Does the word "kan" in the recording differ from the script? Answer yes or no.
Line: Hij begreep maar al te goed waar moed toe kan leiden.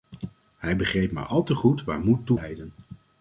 yes